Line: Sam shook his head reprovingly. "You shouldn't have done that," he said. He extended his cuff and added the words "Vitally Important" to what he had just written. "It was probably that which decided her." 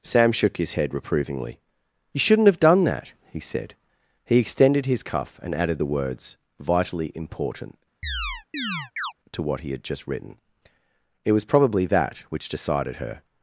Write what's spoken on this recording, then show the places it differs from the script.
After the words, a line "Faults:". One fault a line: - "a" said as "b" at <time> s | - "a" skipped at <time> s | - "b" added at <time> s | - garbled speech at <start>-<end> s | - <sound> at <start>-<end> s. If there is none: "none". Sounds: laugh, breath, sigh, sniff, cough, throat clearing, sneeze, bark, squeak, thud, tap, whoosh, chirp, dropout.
Sam shook his head reprovingly. "You shouldn't have done that," he said. He extended his cuff and added the words "Vitally Important" to what he had just written. "It was probably that which decided her."
Faults:
- chirp at 8.0-9.1 s